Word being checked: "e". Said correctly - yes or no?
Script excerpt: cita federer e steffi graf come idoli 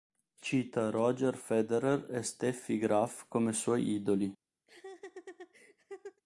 yes